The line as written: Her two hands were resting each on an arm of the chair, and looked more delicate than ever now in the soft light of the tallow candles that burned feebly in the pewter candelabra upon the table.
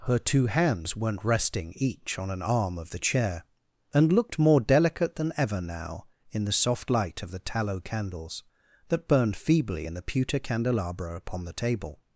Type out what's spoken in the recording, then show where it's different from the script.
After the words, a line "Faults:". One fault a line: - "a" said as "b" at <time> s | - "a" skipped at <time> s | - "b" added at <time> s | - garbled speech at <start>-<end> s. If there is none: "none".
Her two hands weren't resting each on an arm of the chair, and looked more delicate than ever now in the soft light of the tallow candles that burned feebly in the pewter candelabra upon the table.
Faults:
- "were" said as "weren't" at 0.9 s